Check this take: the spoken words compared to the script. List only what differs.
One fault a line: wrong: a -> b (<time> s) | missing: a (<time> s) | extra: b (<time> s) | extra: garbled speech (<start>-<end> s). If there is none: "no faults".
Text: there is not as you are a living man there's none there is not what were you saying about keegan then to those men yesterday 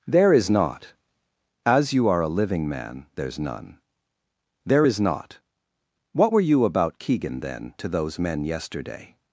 missing: saying (6.6 s)